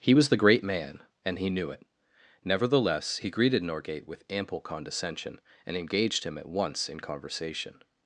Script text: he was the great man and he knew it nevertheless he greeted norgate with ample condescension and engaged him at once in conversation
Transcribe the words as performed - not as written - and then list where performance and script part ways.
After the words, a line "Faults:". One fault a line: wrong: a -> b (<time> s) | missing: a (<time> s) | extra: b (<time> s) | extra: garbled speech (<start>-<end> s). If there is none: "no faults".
he was the great man and he knew it nevertheless he greeted norgate with ample condescension and engaged him at once in conversation
Faults:
no faults